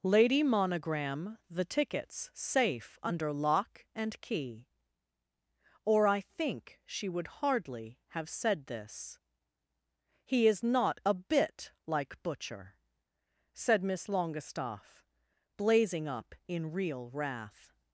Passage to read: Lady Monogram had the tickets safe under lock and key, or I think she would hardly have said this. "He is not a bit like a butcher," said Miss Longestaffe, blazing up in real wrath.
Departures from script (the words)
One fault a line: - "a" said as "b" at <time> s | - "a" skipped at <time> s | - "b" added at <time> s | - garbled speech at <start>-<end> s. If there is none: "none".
- "had" skipped at 1.4 s
- "a" skipped at 12.2 s